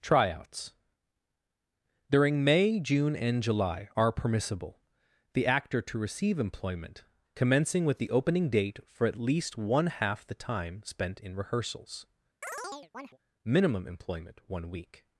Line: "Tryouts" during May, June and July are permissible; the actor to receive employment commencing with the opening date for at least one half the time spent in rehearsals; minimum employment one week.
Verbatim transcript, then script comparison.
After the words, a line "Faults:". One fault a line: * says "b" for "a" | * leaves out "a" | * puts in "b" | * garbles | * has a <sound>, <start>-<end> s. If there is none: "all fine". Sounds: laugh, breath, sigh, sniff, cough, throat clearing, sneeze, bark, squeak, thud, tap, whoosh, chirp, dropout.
"Tryouts" during May, June and July are permissible; the actor to receive employment commencing with the opening date for at least one half the time spent in rehearsals; minimum employment one week.
Faults:
* has a chirp, 12.4-13.2 s